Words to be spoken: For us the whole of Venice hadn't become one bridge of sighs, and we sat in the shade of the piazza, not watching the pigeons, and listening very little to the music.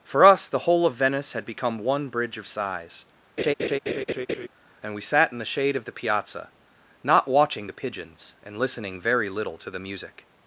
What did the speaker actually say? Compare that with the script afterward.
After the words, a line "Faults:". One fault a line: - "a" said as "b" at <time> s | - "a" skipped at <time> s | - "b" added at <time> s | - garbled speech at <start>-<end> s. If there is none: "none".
For us the whole of Venice had become one bridge of sighs, and we sat in the shade of the piazza, not watching the pigeons, and listening very little to the music.
Faults:
- "hadn't" said as "had" at 1.3 s